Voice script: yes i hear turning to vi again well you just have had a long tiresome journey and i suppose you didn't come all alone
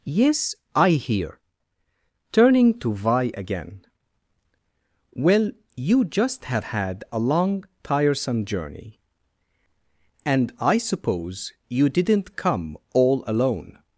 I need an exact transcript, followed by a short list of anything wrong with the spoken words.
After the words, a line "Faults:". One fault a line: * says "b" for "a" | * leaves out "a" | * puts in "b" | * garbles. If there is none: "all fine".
yes i hear turning to vi again well you just have had a long tiresome journey and i suppose you didn't come all alone
Faults:
all fine